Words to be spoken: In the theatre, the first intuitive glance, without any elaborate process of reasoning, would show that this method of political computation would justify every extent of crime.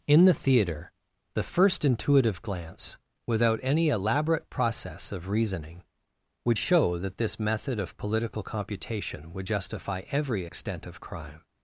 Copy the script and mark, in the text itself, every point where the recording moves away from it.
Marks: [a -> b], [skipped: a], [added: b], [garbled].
In the theatre, the first intuitive glance, without any elaborate process of reasoning, would show that this method of political computation would justify every extent of crime.